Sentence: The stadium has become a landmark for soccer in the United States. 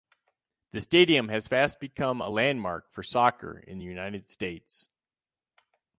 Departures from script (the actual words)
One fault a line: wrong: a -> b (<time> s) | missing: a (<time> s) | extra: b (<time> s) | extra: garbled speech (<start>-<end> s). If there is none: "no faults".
extra: fast (1.5 s)